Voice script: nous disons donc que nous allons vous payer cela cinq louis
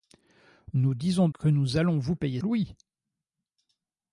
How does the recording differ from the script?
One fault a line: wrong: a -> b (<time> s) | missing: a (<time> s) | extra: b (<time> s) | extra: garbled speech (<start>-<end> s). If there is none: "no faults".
missing: donc (1.3 s)
missing: cela cinq (2.4 s)